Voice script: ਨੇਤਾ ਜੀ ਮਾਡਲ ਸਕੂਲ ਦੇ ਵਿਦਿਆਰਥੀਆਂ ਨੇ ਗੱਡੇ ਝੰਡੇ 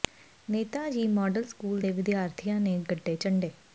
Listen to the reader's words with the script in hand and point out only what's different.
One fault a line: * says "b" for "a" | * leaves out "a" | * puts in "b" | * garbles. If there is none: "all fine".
all fine